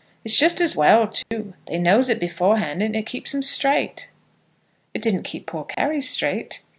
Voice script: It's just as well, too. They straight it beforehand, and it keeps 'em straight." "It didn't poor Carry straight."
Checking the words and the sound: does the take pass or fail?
fail